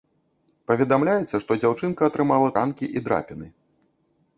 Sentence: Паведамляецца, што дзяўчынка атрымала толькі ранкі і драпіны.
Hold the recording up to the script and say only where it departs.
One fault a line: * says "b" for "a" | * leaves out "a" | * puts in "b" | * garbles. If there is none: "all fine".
* leaves out "толькі"